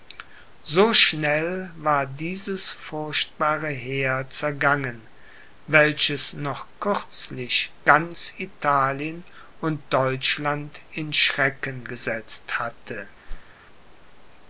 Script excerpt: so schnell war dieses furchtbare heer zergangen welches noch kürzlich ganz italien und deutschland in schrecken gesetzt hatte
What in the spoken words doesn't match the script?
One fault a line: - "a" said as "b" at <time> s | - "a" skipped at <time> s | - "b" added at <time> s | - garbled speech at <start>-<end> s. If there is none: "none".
none